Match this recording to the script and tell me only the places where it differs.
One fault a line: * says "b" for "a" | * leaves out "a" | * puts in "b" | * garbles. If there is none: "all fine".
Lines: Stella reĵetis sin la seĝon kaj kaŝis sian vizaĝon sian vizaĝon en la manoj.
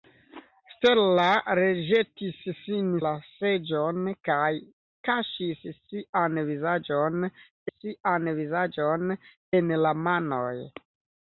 all fine